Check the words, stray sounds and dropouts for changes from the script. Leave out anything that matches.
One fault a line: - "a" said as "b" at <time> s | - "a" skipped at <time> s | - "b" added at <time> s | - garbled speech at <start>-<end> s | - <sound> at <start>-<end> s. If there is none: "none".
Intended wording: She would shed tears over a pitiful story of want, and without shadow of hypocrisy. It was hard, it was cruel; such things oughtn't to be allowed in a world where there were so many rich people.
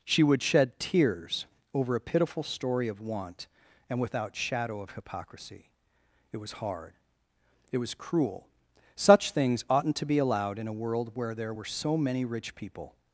none